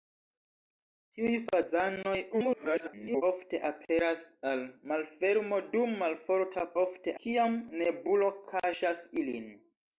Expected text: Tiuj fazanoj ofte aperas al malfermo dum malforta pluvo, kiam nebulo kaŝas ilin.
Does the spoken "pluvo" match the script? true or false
false